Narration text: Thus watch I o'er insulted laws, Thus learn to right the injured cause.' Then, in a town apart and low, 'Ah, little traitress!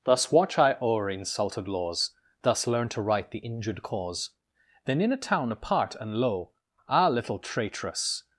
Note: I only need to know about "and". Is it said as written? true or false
true